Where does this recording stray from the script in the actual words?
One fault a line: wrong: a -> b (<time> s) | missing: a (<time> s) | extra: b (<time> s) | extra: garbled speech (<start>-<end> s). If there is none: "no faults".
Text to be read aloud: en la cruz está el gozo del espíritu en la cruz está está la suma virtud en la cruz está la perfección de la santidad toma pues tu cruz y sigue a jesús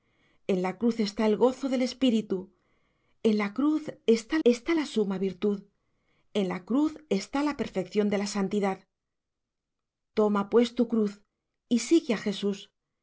no faults